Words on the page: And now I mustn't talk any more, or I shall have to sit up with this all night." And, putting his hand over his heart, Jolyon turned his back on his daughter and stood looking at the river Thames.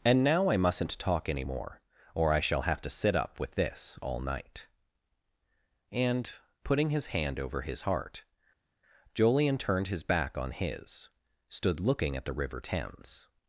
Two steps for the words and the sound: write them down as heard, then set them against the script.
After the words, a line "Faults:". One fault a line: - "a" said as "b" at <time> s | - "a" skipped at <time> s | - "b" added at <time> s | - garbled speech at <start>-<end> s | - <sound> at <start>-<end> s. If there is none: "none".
And now I mustn't talk any more, or I shall have to sit up with this all night." And, putting his hand over his heart, Jolyon turned his back on his stood looking at the river Thames.
Faults:
- "daughter and" skipped at 11.1 s